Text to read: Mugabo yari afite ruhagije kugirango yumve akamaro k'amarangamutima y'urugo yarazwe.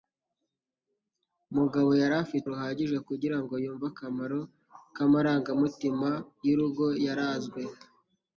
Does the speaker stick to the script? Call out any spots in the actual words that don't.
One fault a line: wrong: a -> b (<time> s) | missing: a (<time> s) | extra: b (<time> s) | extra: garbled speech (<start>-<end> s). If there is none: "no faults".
no faults